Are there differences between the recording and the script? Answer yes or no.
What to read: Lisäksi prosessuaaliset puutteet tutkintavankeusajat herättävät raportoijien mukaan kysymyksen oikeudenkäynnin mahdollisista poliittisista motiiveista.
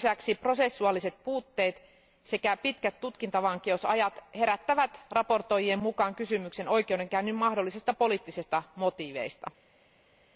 yes